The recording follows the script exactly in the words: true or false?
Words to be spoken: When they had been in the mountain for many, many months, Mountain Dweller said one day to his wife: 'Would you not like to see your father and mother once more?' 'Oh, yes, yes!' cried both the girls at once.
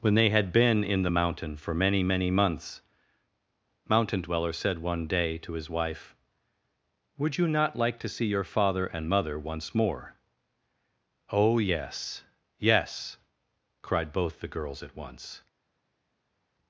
true